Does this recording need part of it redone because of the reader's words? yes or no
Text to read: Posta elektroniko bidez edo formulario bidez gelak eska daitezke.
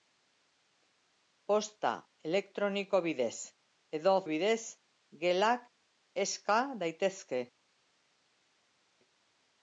yes